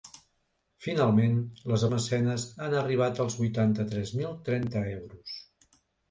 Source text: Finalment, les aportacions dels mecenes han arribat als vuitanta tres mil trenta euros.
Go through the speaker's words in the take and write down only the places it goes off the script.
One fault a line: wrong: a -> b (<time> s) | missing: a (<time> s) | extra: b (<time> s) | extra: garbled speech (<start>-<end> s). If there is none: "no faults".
missing: aportacions dels (1.9 s)